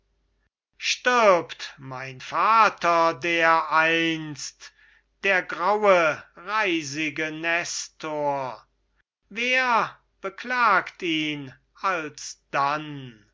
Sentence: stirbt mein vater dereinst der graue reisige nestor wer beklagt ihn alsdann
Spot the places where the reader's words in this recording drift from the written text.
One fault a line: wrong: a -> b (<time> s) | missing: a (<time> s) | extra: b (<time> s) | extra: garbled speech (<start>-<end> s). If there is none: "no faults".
no faults